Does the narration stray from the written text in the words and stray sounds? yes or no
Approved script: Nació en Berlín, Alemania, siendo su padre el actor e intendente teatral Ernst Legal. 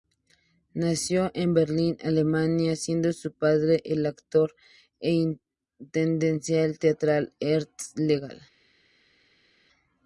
no